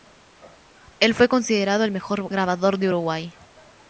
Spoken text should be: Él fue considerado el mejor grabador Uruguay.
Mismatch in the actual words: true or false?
true